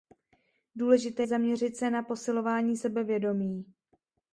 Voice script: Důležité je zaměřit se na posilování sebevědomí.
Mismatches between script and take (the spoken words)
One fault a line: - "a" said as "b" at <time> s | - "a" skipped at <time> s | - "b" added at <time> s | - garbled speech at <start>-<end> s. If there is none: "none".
- "je" skipped at 1.2 s